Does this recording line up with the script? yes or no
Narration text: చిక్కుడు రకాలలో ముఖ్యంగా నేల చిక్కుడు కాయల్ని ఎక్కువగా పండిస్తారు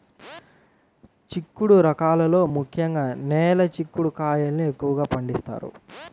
yes